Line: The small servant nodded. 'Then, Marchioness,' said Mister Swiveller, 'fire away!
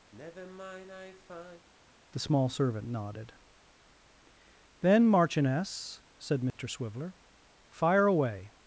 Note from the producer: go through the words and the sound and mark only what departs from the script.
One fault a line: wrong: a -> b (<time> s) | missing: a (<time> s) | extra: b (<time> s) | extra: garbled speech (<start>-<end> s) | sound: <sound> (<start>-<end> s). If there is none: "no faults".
sound: sigh (0.1-1.7 s)
sound: dropout (6.5-6.6 s)